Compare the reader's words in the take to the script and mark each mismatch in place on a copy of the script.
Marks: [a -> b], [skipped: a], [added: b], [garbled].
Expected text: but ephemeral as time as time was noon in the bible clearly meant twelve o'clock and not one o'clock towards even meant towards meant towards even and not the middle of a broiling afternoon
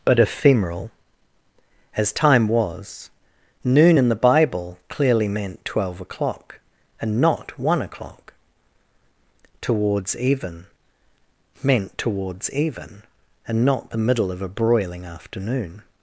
but ephemeral as time [skipped: as time] was noon in the bible clearly meant twelve o'clock and not one o'clock towards even meant towards [skipped: meant towards] even and not the middle of a broiling afternoon